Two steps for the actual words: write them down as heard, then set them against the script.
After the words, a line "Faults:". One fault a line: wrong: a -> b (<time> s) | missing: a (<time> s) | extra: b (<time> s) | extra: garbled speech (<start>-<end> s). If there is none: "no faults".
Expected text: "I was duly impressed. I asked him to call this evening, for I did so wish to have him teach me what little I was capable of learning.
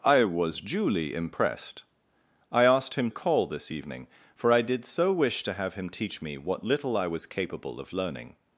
"I was duly impressed. I asked him call this evening, for I did so wish to have him teach me what little I was capable of learning.
Faults:
missing: to (3.1 s)